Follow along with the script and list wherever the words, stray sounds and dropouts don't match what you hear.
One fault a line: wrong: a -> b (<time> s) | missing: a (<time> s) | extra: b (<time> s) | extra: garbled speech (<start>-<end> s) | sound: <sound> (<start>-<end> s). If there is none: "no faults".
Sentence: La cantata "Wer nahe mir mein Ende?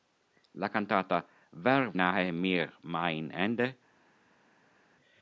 no faults